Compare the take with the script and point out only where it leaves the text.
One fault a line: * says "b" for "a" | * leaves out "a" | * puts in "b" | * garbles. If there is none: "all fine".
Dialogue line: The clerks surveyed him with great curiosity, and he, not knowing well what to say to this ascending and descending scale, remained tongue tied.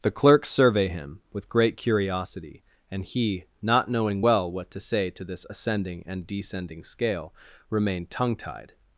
* says "survey" for "surveyed"